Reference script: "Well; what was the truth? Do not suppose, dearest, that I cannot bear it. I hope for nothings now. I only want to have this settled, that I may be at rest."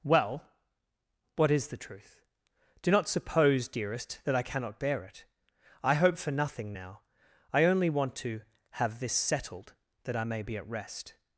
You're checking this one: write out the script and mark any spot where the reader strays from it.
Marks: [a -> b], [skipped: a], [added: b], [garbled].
"Well; what [was -> is] the truth? Do not suppose, dearest, that I cannot bear it. I hope for [nothings -> nothing] now. I only want to have this settled, that I may be at rest."